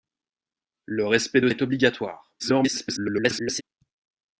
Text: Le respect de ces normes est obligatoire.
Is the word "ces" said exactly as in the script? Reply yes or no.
no